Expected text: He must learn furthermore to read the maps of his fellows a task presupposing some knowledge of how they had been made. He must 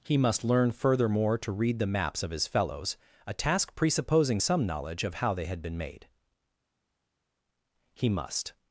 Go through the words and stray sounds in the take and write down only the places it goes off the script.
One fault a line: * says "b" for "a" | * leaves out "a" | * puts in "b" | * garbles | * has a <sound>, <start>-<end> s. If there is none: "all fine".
all fine